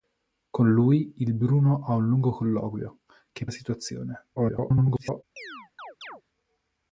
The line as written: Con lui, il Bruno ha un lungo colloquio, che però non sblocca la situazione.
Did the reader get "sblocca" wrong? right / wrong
wrong